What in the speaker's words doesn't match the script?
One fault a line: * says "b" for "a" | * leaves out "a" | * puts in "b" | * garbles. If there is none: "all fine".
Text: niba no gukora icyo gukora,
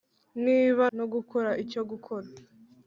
all fine